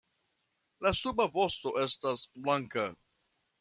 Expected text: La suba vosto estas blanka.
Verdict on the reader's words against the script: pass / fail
pass